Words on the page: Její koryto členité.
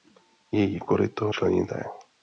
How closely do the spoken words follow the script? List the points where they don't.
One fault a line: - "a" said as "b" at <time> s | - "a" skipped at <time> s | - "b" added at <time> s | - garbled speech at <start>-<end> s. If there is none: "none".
none